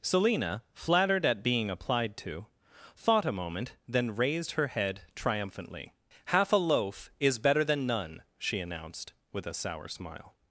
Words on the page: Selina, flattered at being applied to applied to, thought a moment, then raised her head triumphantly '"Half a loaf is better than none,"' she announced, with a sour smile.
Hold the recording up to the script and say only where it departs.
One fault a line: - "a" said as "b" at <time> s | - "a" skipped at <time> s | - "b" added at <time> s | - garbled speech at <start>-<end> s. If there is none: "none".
- "applied to" skipped at 2.5 s